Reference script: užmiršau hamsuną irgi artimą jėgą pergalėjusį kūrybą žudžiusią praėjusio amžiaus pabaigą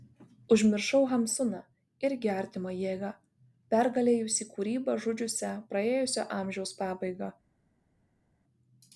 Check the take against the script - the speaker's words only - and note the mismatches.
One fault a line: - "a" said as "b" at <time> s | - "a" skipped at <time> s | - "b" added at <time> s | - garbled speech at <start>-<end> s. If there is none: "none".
none